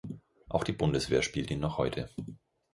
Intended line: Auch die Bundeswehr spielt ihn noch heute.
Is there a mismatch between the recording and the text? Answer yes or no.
no